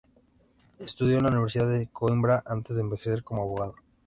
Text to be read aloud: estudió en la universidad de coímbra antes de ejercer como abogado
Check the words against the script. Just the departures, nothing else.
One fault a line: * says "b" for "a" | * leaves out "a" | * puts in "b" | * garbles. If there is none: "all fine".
all fine